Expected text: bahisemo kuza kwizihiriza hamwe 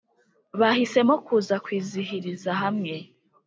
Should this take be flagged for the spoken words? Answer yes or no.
no